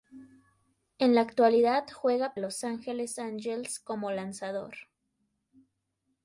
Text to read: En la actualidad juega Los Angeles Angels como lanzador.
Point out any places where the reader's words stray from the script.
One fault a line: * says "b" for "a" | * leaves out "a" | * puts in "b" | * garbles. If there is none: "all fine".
all fine